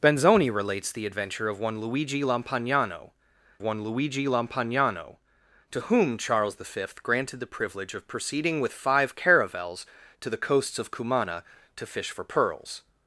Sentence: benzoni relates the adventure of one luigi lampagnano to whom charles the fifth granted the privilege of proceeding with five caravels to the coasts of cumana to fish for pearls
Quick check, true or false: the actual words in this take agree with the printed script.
false